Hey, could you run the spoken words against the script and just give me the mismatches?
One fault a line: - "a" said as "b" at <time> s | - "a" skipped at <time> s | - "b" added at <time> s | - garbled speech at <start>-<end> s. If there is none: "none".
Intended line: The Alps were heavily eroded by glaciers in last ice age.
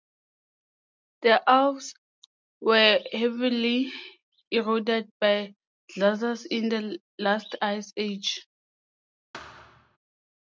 - "the" added at 6.7 s